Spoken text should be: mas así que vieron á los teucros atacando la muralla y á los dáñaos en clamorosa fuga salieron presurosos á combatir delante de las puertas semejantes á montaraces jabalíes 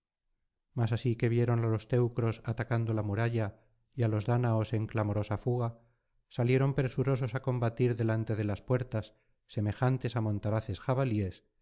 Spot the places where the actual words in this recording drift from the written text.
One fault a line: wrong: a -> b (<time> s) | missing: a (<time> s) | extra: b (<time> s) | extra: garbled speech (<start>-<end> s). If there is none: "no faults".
no faults